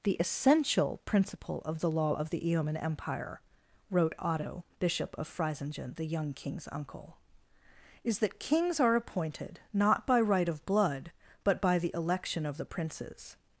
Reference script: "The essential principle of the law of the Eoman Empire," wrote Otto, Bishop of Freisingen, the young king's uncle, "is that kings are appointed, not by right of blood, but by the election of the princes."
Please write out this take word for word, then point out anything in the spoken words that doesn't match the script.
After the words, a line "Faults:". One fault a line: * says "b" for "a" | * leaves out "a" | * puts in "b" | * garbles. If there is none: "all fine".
"The essential principle of the law of the Eoman Empire," wrote Otto, Bishop of Freisingen, the young king's uncle, "is that kings are appointed, not by right of blood, but by the election of the princes."
Faults:
all fine